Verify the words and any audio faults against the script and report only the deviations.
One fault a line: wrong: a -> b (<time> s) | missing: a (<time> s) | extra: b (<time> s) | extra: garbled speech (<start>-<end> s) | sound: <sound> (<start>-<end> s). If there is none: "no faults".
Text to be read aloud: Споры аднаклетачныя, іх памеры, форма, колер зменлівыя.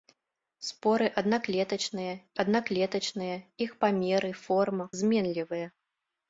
extra: аднаклетачныя (2.4 s)
missing: колер (4.8 s)